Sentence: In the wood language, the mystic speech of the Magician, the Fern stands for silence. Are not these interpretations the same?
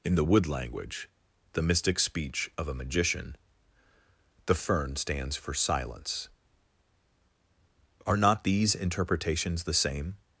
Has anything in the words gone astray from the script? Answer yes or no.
yes